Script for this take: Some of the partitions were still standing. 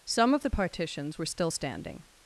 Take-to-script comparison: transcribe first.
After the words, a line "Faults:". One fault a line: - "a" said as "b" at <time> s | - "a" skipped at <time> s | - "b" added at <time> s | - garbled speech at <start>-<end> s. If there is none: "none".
Some of the partitions were still standing.
Faults:
none